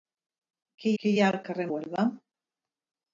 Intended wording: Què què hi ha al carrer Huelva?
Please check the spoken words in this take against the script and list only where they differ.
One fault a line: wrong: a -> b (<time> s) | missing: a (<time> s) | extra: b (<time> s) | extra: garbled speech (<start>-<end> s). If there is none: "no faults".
no faults